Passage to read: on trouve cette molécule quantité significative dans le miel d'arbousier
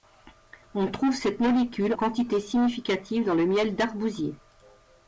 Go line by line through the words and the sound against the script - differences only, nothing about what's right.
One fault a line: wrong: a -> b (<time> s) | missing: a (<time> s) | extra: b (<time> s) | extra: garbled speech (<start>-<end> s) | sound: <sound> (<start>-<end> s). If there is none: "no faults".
no faults